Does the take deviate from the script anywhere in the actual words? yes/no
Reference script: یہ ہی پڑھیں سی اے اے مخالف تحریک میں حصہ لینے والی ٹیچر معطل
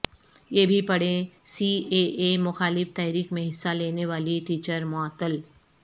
yes